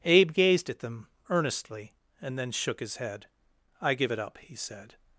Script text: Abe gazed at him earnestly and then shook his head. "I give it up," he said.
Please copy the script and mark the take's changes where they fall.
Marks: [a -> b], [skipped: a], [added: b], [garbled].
Abe gazed at [him -> them] earnestly and then shook his head. "I give it up," he said.